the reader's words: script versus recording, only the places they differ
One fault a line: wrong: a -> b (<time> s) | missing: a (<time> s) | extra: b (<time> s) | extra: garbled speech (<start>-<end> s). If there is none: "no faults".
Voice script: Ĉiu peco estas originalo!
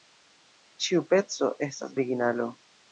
no faults